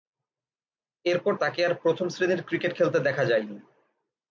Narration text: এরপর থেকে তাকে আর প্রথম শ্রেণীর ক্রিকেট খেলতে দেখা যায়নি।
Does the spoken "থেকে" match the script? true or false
false